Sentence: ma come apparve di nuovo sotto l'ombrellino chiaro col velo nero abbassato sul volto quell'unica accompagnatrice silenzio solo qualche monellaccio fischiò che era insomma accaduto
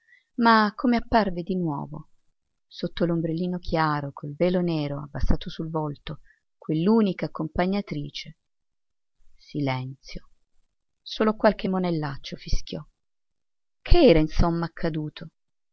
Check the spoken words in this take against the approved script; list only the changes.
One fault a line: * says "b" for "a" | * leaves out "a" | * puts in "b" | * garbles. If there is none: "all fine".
all fine